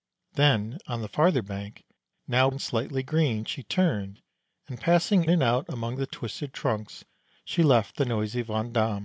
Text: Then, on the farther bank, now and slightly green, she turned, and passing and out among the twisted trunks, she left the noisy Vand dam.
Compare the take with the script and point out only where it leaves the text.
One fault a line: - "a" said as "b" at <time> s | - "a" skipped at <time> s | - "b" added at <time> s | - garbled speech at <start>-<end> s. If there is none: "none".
none